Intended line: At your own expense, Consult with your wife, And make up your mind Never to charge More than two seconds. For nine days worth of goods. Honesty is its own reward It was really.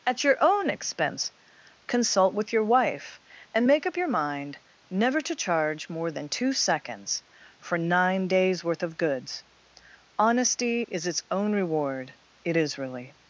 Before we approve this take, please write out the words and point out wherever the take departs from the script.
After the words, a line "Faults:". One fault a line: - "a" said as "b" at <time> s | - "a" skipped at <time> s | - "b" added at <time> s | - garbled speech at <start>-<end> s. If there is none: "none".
At your own expense, Consult with your wife, And make up your mind Never to charge More than two seconds. For nine days worth of goods. Honesty is its own reward It is really.
Faults:
- "was" said as "is" at 12.6 s